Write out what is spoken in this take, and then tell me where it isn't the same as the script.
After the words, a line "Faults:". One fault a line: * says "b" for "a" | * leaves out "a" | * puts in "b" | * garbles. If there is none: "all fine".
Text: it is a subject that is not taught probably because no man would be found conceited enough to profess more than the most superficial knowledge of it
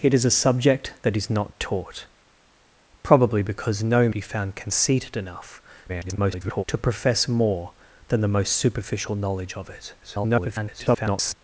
it is a subject that is not taught probably because no be found conceited enough [garbled] to profess more than the most superficial knowledge of it [garbled]
Faults:
* leaves out "man would"
* garbles
* garbles